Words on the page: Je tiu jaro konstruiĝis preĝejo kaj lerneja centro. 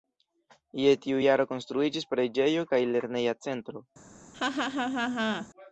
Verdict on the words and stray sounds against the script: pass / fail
fail